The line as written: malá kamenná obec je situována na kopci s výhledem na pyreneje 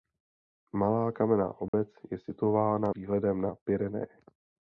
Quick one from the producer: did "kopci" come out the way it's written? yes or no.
no